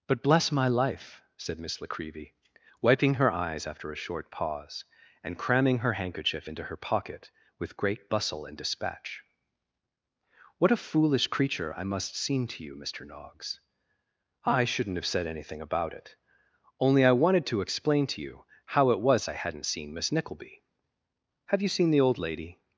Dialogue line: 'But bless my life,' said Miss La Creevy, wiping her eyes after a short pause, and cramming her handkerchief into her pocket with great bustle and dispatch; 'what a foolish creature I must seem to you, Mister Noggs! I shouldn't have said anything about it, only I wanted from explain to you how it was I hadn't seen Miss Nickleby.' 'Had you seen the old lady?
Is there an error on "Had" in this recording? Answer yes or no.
yes